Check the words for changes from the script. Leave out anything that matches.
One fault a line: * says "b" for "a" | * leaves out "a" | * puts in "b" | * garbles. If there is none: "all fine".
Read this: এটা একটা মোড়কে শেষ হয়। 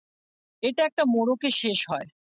all fine